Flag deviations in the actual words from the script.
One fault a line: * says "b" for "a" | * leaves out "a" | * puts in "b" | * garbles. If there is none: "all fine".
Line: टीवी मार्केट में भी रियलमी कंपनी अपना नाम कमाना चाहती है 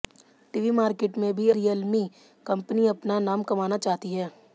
all fine